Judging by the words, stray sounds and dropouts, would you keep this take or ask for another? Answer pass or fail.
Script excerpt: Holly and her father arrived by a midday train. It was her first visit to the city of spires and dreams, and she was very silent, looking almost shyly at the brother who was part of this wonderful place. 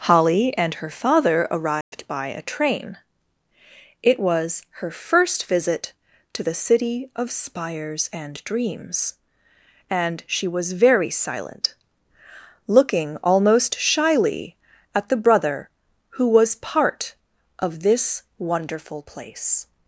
fail